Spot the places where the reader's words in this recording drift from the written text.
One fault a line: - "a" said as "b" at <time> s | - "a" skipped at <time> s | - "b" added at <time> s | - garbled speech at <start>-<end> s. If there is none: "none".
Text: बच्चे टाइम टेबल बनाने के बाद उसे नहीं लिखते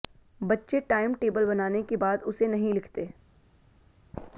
none